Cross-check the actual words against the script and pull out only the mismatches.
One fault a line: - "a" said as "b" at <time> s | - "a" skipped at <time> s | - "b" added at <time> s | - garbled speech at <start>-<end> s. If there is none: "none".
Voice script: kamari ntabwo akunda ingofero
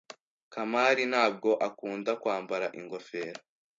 - "kwambara" added at 2.2 s